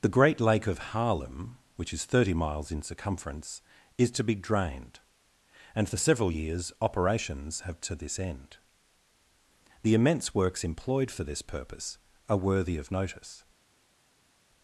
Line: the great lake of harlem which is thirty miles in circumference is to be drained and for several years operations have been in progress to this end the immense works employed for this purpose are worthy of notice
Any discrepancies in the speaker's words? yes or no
yes